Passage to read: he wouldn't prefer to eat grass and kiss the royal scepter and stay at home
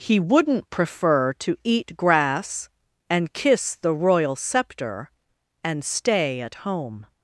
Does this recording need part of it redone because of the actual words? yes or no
no